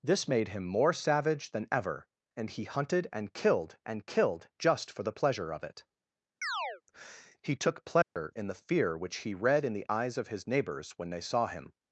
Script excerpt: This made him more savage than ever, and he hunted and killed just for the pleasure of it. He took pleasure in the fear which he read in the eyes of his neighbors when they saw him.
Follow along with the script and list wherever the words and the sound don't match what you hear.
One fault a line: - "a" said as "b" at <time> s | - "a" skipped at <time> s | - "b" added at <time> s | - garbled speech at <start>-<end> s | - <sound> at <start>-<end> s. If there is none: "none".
- "and killed" added at 3.9 s
- chirp at 6.4-6.8 s
- dropout at 8.0-8.2 s